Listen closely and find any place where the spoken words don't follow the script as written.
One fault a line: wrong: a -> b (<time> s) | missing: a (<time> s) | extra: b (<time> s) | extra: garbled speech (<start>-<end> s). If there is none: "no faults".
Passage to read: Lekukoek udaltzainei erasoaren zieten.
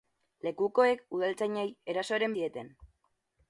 no faults